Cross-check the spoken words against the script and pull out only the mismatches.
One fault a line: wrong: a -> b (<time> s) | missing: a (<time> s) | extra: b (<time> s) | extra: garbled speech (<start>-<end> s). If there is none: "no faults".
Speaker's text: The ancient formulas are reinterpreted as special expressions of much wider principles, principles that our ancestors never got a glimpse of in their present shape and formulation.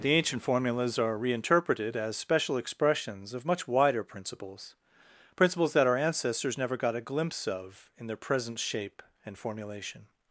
no faults